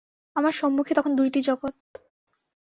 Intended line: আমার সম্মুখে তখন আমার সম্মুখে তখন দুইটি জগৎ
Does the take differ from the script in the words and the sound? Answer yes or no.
yes